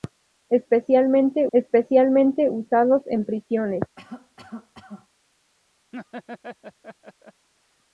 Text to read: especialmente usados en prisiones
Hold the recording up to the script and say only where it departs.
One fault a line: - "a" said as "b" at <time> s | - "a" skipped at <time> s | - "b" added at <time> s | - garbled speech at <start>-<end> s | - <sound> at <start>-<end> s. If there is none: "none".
- "especialmente" added at 1.5 s
- cough at 4.0-5.1 s
- laugh at 5.9-7.5 s